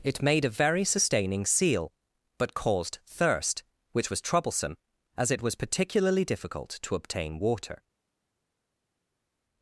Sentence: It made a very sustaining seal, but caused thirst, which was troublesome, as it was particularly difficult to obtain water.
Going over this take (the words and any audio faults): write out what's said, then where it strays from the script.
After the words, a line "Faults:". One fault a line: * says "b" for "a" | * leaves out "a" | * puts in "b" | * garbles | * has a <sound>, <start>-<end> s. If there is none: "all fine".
It made a very sustaining seal, but caused thirst, which was troublesome, as it was particularly difficult to obtain water.
Faults:
all fine